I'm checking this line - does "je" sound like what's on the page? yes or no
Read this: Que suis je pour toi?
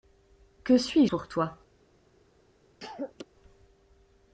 no